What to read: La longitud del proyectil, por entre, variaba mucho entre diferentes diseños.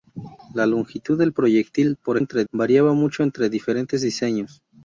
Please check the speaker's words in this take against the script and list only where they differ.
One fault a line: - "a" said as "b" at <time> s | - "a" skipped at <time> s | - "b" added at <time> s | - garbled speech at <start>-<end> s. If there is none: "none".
none